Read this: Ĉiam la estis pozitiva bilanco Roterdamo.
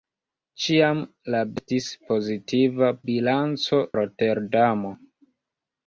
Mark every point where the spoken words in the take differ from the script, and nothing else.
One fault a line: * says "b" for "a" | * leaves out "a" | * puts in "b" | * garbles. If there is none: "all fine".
all fine